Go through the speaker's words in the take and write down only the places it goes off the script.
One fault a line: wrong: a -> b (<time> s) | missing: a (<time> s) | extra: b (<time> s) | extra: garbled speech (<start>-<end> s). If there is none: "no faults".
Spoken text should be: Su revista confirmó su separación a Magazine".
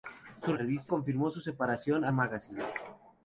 no faults